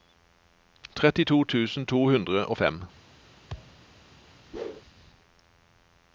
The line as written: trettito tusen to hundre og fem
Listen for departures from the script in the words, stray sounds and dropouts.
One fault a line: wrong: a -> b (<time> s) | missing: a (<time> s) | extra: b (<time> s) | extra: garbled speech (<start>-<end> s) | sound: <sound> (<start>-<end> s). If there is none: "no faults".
sound: thud (3.5-3.8 s)
sound: whoosh (4.5-4.8 s)